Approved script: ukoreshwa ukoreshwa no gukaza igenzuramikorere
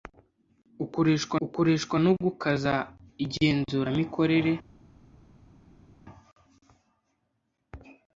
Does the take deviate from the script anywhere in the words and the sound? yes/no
no